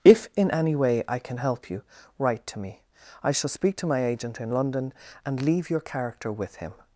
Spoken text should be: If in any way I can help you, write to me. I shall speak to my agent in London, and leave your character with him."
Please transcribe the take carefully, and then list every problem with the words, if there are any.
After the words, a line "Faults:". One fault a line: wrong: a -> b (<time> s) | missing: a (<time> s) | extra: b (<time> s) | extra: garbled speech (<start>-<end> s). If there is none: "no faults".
If in any way I can help you, write to me. I shall speak to my agent in London, and leave your character with him."
Faults:
no faults